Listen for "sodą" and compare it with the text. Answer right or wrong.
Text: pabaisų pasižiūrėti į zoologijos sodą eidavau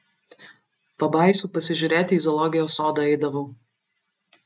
right